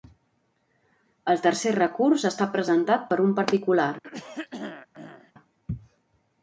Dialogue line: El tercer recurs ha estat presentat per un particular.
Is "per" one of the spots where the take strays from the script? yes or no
no